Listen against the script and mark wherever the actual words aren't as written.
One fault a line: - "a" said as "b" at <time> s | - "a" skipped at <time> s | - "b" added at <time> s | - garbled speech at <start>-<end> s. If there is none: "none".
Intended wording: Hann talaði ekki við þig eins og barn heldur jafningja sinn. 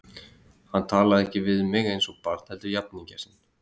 - "þig" said as "mig" at 1.8 s